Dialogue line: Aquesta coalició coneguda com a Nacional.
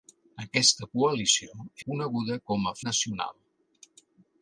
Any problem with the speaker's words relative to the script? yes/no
no